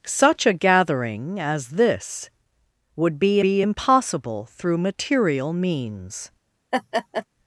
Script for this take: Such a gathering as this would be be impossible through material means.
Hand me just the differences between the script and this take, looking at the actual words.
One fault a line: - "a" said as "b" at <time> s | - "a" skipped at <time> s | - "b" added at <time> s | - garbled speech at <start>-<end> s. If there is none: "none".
none